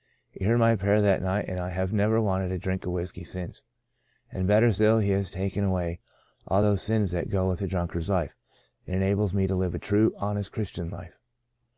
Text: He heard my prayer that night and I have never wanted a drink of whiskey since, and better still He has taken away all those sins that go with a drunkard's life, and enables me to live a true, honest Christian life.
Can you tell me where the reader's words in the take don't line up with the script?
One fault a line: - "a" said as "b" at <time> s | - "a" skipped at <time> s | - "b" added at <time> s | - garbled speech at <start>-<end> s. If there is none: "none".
none